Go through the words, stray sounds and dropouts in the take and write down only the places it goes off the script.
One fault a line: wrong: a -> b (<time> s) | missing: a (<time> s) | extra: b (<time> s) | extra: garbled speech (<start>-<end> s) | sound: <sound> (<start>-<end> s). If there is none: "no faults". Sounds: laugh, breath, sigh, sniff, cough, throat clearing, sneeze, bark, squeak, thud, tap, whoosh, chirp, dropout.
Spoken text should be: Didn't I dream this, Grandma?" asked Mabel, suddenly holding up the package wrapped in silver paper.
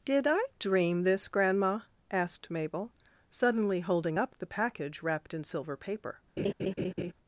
wrong: Didn't -> Did (0.1 s)
sound: laugh (6.4-7.1 s)